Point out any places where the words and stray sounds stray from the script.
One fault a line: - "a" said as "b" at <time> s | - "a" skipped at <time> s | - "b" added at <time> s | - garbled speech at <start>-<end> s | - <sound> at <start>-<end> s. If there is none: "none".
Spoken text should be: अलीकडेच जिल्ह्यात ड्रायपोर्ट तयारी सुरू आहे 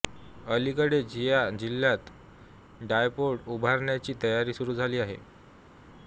- "या" added at 1.2 s
- "उभारण्याची" added at 3.5 s
- "झाली" added at 4.7 s